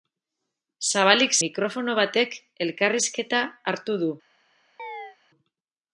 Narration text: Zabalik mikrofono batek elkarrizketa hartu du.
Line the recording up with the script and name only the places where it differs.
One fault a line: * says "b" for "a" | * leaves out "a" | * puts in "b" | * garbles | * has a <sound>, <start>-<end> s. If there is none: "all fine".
* has a chirp, 4.8-5.2 s